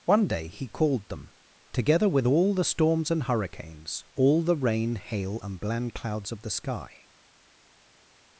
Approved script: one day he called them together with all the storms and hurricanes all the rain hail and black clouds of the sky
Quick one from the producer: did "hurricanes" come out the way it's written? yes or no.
yes